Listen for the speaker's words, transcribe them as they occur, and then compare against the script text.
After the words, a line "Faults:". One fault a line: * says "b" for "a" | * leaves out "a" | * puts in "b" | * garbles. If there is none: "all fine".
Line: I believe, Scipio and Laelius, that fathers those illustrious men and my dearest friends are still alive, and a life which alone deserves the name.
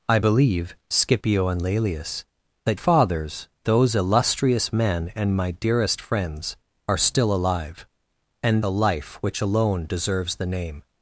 I believe, Scipio and Laelius, that fathers those illustrious men and my dearest friends are still alive, and a life which alone deserves the name.
Faults:
all fine